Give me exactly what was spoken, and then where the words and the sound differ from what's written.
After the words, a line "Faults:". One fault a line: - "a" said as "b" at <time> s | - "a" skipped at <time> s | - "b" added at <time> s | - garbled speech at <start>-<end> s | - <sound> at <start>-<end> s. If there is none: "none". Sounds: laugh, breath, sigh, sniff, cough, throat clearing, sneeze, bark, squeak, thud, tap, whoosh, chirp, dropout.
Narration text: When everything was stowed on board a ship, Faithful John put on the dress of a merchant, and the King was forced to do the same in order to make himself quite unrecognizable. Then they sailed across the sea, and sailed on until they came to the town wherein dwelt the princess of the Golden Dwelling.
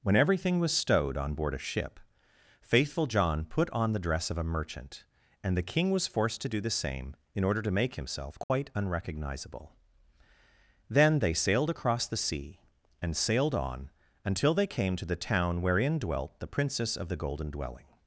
When everything was stowed on board a ship, Faithful John put on the dress of a merchant, and the King was forced to do the same in order to make himself quite unrecognizable. Then they sailed across the sea, and sailed on until they came to the town wherein dwelt the princess of the Golden Dwelling.
Faults:
- dropout at 8.4-8.5 s